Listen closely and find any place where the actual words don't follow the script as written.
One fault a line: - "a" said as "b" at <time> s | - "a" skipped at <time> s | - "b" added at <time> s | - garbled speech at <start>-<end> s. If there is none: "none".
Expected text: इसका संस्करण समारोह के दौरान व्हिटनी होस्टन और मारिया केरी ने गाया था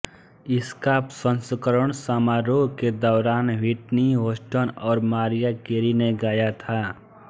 none